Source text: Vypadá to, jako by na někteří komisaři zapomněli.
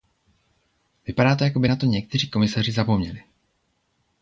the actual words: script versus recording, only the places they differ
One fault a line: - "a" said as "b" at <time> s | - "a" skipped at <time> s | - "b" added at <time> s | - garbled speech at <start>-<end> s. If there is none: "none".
- "to" added at 1.7 s